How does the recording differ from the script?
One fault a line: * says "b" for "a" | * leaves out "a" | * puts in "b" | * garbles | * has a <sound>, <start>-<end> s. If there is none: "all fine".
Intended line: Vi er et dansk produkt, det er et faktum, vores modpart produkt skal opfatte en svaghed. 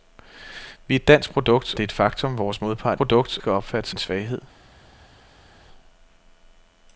all fine